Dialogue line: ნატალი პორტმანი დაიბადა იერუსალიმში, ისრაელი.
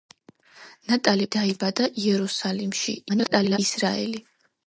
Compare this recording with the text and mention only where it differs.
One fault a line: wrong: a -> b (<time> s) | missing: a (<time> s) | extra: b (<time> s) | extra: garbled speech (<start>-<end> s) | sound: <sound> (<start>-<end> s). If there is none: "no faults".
missing: პორტმანი (1.3 s)
extra: garbled speech (3.1-3.6 s)